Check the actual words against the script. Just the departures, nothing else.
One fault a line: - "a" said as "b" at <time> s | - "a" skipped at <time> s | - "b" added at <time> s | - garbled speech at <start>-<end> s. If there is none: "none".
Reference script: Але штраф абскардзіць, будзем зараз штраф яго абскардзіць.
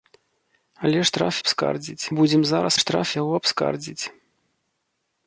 none